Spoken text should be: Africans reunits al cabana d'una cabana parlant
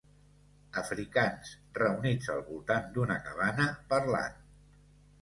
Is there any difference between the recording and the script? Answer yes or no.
yes